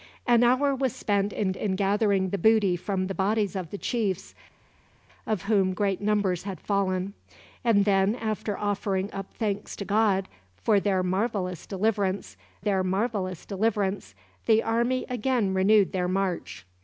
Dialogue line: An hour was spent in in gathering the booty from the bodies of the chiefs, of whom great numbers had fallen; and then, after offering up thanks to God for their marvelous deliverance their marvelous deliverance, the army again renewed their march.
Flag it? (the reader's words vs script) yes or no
no